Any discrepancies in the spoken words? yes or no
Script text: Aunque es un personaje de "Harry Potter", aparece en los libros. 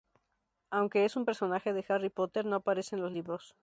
yes